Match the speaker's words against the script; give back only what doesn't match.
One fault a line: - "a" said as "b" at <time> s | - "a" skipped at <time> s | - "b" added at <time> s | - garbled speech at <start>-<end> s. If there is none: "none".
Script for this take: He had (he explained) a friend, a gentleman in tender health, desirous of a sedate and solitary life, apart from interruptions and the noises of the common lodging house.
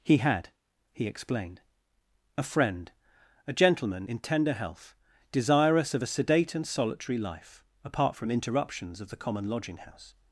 - "and the noises" skipped at 9.0 s